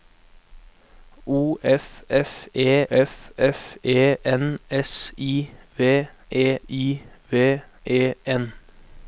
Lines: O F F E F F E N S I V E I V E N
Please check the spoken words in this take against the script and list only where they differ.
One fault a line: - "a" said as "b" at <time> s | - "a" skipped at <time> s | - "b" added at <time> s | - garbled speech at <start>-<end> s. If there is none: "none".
none